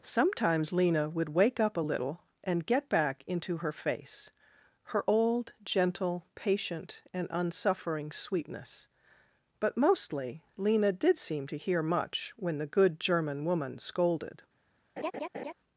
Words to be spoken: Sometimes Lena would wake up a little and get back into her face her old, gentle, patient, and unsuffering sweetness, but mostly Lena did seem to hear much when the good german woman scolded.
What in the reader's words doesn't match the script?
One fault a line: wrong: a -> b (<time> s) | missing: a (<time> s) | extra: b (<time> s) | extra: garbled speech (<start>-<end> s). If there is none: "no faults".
no faults